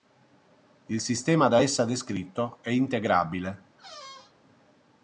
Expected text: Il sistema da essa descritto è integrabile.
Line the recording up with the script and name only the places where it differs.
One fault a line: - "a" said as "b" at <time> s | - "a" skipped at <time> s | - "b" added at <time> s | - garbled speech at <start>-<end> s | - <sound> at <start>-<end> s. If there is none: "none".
- squeak at 3.8-4.4 s